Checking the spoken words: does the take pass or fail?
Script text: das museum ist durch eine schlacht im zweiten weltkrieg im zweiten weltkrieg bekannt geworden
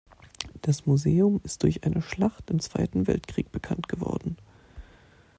fail